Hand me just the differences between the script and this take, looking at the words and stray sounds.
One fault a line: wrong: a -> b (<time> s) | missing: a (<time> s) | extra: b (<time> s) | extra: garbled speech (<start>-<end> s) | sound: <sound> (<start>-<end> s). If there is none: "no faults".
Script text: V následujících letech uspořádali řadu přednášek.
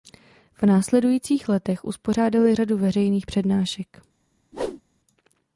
extra: veřejných (2.8 s)
sound: whoosh (4.5-4.8 s)